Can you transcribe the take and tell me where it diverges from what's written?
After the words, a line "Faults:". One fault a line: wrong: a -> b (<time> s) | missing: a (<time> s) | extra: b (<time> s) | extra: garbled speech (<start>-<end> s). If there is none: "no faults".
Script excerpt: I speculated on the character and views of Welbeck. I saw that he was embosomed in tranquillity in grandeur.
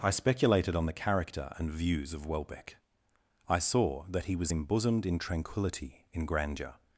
I speculated on the character and views of Welbeck. I saw that he was embosomed in tranquillity in grandeur.
Faults:
no faults